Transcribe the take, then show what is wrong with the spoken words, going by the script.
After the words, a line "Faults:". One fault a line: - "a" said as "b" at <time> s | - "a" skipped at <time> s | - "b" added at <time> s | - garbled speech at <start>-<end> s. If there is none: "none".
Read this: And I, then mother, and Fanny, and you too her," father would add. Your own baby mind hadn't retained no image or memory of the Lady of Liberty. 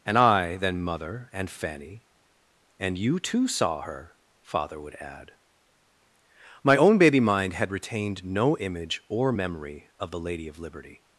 And I, then mother, and Fanny, and you too saw her," father would add. My own baby mind had retained no image or memory of the Lady of Liberty.
Faults:
- "saw" added at 3.5 s
- "Your" said as "My" at 6.6 s
- "hadn't" said as "had" at 7.5 s